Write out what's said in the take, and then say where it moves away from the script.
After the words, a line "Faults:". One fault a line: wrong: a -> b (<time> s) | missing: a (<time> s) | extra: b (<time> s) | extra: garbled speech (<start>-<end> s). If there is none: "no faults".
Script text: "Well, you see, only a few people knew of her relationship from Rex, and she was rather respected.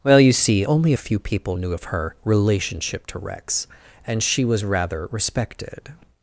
"Well, you see, only a few people knew of her relationship to Rex, and she was rather respected.
Faults:
wrong: from -> to (3.1 s)